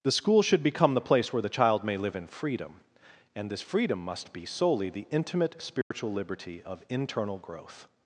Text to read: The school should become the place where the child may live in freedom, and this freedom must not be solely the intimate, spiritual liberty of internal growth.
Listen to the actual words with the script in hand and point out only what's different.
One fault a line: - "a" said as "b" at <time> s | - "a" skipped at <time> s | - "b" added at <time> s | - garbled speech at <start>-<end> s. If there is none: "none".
- "not" skipped at 4.3 s